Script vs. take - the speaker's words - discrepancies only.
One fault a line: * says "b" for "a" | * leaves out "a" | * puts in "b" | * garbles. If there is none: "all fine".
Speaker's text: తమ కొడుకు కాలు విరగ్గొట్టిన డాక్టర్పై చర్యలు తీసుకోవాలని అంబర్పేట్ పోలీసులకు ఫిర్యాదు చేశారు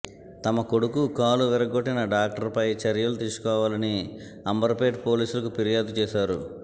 all fine